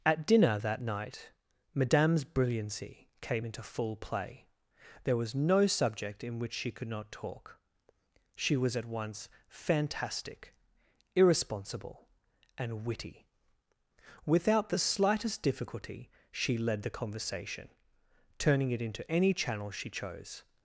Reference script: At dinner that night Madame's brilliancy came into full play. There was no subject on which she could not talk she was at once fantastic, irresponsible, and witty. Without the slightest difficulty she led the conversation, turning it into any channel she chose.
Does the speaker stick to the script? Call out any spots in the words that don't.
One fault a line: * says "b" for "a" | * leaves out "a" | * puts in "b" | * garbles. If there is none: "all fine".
* says "in" for "on"